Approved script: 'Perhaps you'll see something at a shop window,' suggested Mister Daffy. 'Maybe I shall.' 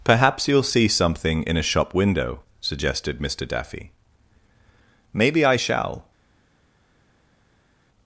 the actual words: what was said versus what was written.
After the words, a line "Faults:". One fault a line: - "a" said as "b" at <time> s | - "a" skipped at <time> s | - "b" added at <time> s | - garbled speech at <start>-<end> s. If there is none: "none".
'Perhaps you'll see something in a shop window,' suggested Mister Daffy. 'Maybe I shall.'
Faults:
- "at" said as "in" at 1.4 s